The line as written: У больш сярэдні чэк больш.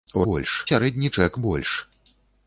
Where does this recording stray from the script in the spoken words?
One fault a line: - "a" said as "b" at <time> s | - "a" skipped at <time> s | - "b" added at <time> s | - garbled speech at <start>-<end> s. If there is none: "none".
none